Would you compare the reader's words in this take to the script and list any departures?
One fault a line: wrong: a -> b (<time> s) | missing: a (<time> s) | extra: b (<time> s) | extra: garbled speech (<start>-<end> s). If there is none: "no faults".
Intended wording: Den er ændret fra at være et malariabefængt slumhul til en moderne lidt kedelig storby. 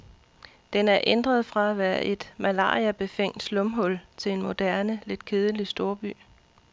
no faults